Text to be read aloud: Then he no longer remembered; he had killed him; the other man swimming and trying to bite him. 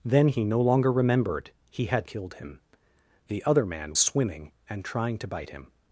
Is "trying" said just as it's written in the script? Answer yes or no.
yes